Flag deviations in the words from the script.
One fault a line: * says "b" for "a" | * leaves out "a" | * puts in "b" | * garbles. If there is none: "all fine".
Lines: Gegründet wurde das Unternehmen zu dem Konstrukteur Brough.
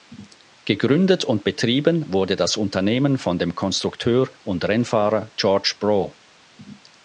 * puts in "und betrieben"
* says "von" for "zu"
* puts in "und Rennfahrer George"